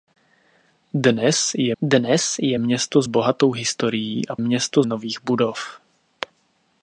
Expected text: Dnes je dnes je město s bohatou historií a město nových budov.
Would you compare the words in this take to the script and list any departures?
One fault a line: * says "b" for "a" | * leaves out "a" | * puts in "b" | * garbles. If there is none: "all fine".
all fine